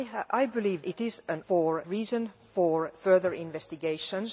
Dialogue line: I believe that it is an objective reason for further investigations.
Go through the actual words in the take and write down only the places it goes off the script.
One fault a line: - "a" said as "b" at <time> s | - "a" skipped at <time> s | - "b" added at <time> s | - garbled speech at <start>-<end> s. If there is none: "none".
- "that" skipped at 0.8 s
- "objective" said as "for" at 1.5 s